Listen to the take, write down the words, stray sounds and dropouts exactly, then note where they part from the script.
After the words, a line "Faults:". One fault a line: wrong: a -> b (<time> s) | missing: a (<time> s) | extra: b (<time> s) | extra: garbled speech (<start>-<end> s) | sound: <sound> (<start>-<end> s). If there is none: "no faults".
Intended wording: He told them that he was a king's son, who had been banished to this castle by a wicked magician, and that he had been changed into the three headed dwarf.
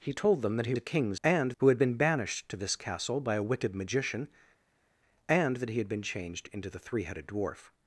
He told them that he a king's and, who had been banished to this castle by a wicked magician, and that he had been changed into the three headed dwarf.
Faults:
missing: was (0.7 s)
wrong: son -> and (1.2 s)